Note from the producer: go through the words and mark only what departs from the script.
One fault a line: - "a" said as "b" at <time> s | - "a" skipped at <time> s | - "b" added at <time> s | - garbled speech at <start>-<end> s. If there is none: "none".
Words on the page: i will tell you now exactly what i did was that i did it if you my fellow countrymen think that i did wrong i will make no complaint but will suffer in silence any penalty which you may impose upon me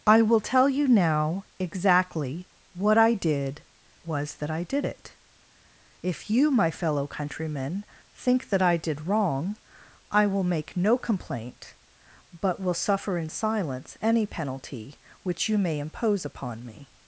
none